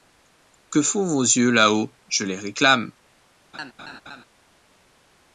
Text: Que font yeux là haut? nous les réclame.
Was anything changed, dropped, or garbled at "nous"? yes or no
yes